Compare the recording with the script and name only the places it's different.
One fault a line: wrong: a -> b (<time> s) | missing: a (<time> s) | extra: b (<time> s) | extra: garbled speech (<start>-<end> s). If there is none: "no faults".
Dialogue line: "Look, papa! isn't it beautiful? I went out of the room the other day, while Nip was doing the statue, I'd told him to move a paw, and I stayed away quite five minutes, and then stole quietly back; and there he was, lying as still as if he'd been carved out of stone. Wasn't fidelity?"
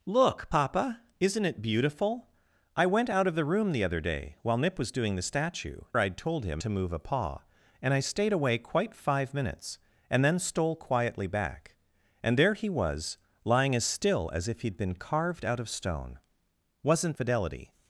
no faults